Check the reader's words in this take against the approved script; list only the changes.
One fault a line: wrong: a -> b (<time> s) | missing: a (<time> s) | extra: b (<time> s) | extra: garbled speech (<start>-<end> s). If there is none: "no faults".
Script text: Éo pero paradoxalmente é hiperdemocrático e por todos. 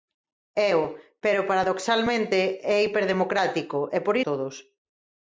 no faults